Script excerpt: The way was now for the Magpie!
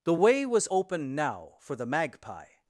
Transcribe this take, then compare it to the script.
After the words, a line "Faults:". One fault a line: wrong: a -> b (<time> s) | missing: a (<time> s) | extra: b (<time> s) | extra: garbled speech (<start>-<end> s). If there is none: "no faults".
The way was open now for the Magpie!
Faults:
extra: open (0.7 s)